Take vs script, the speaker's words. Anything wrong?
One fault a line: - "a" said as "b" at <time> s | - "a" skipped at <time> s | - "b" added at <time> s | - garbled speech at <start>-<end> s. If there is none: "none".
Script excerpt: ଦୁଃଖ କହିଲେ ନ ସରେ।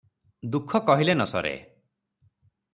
none